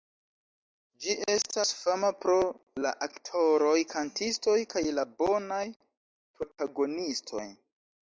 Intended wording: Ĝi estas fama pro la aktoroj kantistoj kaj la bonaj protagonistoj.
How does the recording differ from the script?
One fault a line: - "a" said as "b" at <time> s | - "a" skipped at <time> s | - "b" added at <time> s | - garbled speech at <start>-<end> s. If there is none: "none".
none